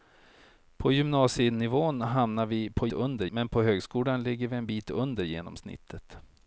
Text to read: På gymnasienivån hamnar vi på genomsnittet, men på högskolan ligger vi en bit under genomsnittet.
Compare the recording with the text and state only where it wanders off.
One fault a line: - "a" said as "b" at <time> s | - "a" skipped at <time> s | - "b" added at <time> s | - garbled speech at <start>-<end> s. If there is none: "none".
- "genomsnittet" said as "under" at 2.9 s